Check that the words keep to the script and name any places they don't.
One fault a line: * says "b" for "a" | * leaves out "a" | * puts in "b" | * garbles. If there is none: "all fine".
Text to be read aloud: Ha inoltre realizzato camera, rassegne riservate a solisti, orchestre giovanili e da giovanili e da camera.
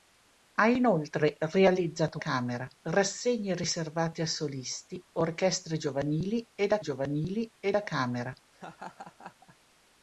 all fine